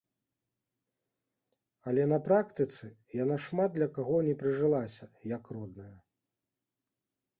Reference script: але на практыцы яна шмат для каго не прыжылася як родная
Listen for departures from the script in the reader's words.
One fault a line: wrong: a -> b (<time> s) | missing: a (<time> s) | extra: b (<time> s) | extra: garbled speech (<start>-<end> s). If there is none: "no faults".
no faults